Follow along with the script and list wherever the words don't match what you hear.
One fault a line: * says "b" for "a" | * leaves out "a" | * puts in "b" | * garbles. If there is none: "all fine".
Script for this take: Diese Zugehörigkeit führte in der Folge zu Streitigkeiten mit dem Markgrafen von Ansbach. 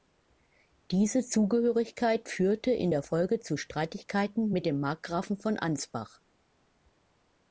all fine